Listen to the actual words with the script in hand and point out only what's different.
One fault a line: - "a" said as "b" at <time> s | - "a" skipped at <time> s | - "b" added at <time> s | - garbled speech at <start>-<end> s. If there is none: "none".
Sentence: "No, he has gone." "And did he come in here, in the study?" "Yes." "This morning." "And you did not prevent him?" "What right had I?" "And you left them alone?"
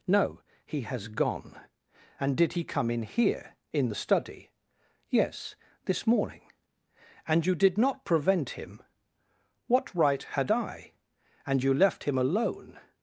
- "them" said as "him" at 12.0 s